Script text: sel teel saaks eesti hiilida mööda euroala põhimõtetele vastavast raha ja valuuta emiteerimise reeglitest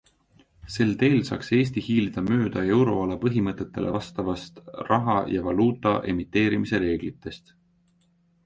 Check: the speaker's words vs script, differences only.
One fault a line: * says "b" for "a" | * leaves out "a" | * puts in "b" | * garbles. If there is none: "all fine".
all fine